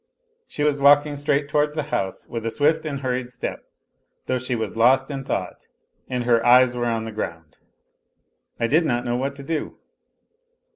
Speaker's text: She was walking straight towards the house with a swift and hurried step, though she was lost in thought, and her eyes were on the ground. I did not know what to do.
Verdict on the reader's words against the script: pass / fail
pass